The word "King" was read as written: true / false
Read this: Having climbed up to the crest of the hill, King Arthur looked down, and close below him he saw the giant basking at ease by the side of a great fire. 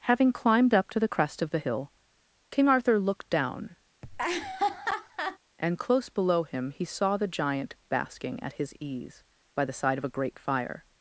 true